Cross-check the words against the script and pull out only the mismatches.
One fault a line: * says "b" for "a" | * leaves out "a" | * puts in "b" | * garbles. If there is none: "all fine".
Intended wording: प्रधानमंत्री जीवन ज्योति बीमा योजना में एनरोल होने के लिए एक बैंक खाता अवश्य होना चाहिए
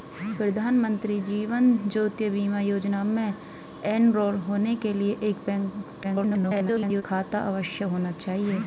* garbles